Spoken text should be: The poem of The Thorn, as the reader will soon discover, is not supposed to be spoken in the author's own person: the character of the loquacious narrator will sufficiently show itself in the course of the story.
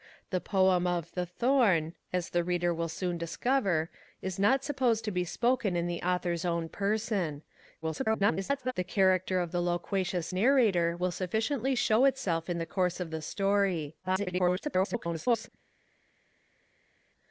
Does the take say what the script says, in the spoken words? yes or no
no